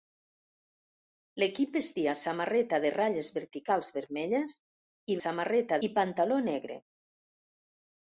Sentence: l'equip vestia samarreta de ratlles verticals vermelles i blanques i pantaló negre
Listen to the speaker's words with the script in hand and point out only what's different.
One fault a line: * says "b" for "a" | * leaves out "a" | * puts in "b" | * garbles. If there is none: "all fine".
* says "samarreta" for "blanques"